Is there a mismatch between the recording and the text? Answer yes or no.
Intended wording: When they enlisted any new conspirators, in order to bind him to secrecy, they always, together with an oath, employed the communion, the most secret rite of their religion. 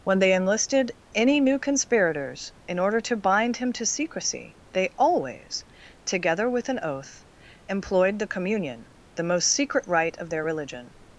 no